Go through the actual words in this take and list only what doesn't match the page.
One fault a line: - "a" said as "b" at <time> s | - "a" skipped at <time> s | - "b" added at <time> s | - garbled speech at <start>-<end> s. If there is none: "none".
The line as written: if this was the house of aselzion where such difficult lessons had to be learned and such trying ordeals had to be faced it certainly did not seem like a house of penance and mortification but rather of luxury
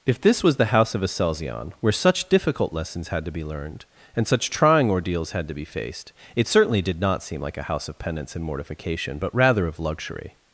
none